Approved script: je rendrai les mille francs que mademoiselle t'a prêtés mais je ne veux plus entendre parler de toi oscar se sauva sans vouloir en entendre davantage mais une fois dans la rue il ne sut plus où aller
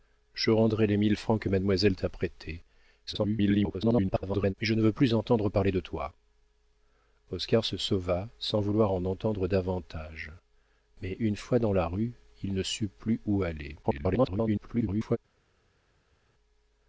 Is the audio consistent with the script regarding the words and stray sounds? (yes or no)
no